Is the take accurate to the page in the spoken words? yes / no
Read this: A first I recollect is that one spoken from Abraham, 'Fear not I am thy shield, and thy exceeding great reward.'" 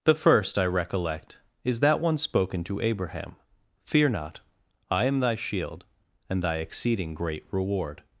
no